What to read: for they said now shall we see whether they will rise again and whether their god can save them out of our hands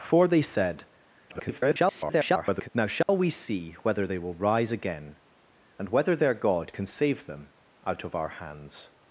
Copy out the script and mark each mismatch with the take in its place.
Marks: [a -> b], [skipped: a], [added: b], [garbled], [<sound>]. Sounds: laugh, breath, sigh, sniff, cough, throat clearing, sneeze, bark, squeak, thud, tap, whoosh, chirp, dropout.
for they said [garbled] now shall [dropout] we see whether they will rise again and whether their god can save them out of our hands